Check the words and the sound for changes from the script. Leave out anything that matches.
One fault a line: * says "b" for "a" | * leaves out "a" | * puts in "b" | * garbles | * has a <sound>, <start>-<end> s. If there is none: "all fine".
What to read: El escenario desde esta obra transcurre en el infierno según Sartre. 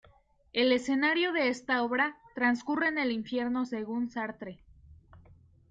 * says "de" for "desde"